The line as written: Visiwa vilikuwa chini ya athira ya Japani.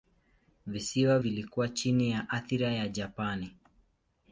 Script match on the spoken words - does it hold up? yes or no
yes